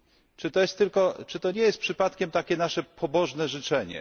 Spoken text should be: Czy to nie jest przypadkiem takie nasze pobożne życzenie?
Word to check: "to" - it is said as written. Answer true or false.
true